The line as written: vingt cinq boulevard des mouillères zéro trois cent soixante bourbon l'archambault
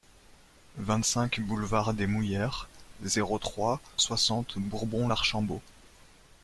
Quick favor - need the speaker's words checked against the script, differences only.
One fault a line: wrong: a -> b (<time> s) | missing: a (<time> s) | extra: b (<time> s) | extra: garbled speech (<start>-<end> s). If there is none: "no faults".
missing: cent (3.8 s)